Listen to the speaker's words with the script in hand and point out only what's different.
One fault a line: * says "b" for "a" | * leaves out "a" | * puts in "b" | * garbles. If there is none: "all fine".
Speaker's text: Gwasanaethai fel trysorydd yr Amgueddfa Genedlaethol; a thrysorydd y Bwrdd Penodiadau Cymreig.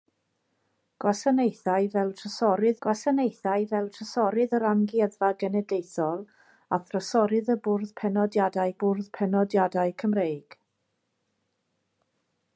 * puts in "gwasanaethai fel trysorydd"
* puts in "Bwrdd Penodiadau"